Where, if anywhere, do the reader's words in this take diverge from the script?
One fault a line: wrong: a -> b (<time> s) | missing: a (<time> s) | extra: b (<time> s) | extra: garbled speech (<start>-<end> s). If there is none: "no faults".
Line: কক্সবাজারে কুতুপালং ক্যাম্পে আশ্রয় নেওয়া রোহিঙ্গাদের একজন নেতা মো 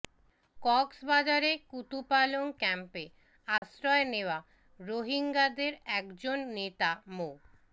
no faults